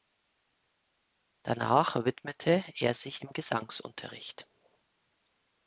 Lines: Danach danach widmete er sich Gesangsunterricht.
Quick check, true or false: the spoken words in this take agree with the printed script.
false